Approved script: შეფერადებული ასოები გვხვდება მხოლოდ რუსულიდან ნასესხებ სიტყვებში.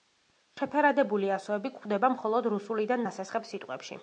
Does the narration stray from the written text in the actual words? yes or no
no